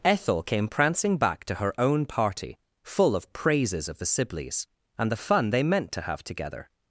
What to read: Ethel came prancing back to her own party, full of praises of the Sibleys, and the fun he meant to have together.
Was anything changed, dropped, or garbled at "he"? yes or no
yes